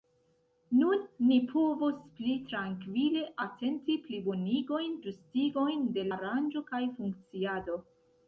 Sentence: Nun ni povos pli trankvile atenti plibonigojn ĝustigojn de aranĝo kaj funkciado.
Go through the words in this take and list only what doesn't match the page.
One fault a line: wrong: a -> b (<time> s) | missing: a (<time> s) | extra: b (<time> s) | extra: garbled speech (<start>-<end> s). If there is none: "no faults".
no faults